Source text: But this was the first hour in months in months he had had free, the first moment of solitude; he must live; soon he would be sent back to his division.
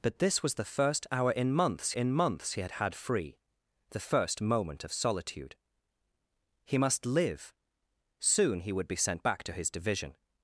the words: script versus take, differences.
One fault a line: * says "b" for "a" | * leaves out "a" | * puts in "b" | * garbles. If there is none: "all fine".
all fine